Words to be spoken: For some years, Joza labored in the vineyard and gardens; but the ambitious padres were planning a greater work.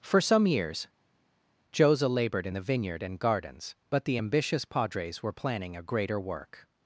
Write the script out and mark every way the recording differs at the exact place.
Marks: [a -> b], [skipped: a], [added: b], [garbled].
For some years, Joza labored in the vineyard and gardens; but the ambitious padres were planning a greater work.